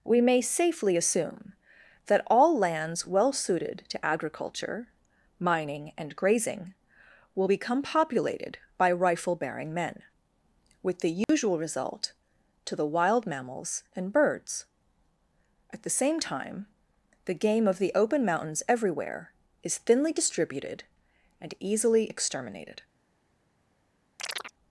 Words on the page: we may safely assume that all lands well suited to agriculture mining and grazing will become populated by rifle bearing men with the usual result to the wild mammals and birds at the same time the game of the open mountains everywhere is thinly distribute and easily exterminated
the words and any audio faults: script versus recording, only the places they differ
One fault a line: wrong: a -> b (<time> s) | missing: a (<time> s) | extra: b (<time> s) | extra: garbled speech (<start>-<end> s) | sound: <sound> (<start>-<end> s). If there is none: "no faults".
sound: dropout (11.2-11.3 s)
wrong: distribute -> distributed (20.1 s)
sound: chirp (24.2-24.5 s)